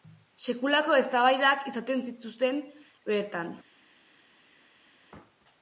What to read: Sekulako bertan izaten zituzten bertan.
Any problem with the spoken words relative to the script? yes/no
yes